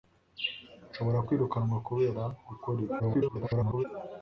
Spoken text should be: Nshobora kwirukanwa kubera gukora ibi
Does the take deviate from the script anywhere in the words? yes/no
yes